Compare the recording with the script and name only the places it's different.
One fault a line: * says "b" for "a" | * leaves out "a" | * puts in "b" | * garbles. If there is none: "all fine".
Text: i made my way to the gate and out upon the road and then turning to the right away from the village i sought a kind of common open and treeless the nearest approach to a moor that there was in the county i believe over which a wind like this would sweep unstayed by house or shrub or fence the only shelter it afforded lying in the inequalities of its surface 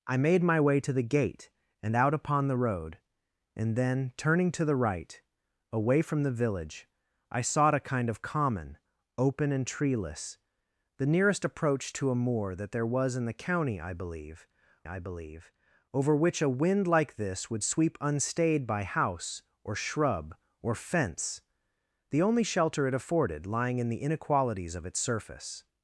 * puts in "i believe"